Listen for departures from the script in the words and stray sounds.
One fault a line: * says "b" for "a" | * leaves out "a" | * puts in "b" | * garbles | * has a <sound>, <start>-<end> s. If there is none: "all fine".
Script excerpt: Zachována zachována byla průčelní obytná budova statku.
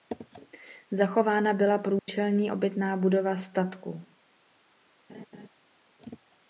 * leaves out "zachována"
* has a dropout, 2.0-2.1 s
* has a laugh, 5.1-5.5 s